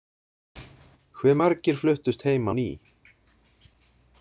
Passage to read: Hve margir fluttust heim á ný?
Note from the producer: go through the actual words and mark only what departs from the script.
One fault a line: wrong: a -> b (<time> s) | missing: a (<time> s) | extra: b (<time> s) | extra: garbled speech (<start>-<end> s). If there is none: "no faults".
no faults